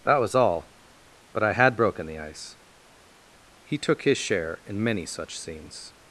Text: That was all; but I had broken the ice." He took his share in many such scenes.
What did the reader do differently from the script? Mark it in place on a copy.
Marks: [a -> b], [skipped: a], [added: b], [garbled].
That was all; but I had broken the ice." He took his share in many such scenes.